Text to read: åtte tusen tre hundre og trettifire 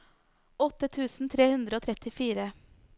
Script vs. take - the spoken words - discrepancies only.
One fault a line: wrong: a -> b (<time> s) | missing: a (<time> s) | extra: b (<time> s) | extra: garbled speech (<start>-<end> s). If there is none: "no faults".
no faults